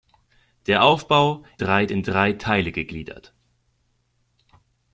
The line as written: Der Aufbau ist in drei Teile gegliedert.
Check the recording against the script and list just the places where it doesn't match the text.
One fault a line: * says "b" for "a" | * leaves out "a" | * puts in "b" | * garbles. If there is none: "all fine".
* says "drei" for "ist"